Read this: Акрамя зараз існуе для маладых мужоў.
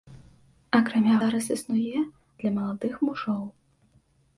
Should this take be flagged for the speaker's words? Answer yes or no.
no